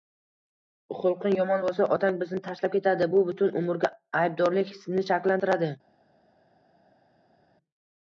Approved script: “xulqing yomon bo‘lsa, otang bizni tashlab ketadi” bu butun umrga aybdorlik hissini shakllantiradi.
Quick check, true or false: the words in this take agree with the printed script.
true